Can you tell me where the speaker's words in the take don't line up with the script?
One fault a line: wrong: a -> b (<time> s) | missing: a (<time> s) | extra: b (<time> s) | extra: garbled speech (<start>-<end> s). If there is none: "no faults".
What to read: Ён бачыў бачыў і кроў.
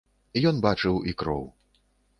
missing: бачыў (0.9 s)